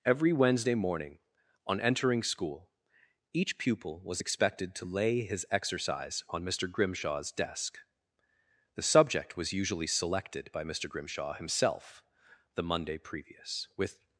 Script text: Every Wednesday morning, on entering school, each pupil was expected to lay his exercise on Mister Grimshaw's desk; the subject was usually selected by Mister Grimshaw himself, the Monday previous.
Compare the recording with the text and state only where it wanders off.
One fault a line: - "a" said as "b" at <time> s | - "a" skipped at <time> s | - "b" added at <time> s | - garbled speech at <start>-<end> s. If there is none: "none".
- "With" added at 13.8 s